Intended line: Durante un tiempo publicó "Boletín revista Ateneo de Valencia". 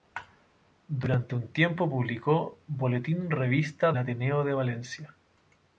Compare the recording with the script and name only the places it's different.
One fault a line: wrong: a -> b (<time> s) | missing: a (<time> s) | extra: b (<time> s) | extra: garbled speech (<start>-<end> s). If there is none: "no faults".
no faults